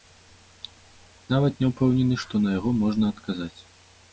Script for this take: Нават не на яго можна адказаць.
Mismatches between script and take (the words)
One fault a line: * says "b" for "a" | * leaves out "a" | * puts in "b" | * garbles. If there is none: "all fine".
* puts in "ўпэўнены што"